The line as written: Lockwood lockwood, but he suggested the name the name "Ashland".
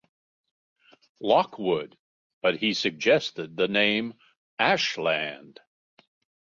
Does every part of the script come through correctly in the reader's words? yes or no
no